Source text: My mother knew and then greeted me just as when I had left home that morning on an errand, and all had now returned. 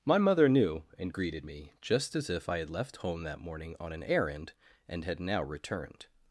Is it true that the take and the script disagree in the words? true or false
true